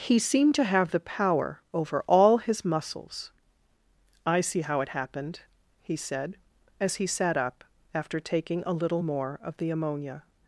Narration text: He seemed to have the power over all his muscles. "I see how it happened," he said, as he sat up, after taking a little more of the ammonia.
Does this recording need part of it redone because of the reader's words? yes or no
no